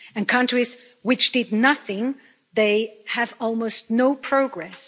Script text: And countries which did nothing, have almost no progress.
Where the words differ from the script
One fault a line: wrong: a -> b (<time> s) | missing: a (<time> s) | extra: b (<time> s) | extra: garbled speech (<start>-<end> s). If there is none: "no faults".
extra: they (2.5 s)